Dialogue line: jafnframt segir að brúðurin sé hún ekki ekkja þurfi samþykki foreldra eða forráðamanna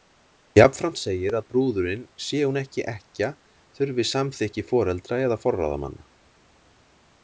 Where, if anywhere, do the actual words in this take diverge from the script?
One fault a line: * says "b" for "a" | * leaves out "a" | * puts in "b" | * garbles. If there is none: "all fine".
all fine